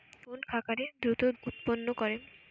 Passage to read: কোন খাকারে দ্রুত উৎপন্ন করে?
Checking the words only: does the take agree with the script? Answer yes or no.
yes